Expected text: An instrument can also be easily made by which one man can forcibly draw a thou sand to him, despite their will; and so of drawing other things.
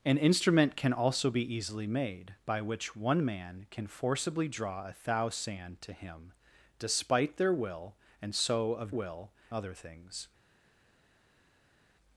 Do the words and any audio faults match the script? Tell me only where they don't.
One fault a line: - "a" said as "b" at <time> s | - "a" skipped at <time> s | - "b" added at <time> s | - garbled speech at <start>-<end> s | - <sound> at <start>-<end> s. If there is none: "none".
- "drawing" said as "will" at 8.9 s